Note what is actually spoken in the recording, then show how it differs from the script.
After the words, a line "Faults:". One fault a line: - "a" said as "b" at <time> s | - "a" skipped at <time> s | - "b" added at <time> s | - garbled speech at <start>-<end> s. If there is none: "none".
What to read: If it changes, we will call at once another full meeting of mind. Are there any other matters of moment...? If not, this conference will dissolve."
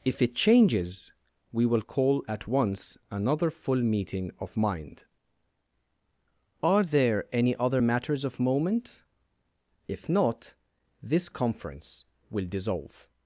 If it changes, we will call at once another full meeting of mind. Are there any other matters of moment...? If not, this conference will dissolve."
Faults:
none